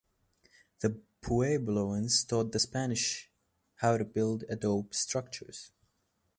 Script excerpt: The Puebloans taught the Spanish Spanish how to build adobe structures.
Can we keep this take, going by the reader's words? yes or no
no